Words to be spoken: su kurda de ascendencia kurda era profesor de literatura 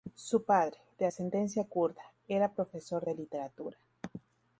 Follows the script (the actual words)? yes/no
no